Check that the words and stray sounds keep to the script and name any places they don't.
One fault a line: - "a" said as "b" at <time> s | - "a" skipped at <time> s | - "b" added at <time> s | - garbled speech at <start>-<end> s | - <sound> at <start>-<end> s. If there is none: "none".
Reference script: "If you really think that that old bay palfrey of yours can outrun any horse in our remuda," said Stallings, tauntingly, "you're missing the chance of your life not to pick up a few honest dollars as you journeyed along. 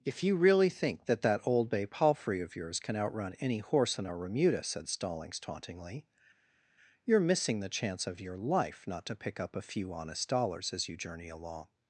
- "journeyed" said as "journey" at 11.0 s